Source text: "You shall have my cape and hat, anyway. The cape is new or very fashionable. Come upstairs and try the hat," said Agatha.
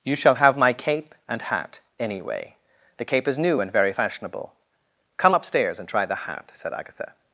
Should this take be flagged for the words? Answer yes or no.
yes